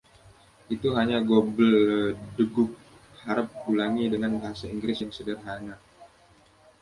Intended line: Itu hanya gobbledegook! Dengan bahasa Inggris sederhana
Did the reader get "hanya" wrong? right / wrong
right